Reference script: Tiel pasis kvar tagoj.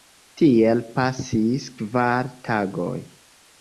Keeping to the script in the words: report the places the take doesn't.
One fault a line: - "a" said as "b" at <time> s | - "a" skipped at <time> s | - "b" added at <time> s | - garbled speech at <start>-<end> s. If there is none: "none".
none